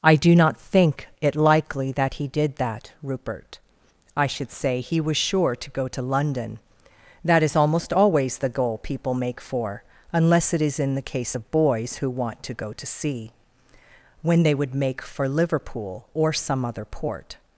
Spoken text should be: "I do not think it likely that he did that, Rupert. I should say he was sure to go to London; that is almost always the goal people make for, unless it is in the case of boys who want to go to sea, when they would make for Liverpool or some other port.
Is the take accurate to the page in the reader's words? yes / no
yes